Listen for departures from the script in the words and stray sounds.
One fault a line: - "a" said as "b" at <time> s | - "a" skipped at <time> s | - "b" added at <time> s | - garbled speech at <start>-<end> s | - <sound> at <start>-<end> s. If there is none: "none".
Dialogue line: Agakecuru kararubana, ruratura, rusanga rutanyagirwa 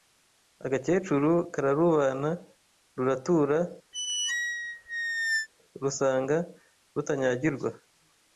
- squeak at 3.9-5.5 s